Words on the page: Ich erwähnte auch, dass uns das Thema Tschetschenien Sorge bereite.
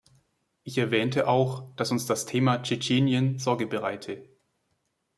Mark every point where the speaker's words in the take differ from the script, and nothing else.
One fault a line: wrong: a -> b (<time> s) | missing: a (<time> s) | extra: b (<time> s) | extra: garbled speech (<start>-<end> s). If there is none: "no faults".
no faults